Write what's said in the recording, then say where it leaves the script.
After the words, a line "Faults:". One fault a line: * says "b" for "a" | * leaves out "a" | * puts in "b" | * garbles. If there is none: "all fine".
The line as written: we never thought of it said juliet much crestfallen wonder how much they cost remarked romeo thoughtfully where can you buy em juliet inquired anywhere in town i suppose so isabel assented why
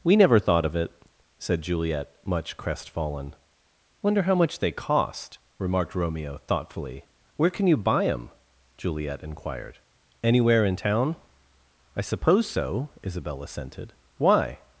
we never thought of it said juliet much crestfallen wonder how much they cost remarked romeo thoughtfully where can you buy em juliet inquired anywhere in town i suppose so isabel assented why
Faults:
all fine